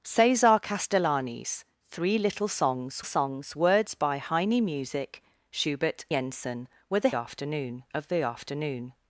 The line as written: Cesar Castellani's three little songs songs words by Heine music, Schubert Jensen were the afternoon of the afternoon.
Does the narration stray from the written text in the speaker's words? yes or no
no